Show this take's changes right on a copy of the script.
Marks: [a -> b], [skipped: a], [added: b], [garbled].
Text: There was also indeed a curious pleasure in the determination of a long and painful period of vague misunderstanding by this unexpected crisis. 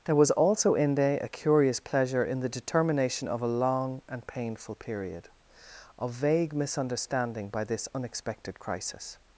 There was also [indeed -> inde] a curious pleasure in the determination of a long and painful period of vague misunderstanding by this unexpected crisis.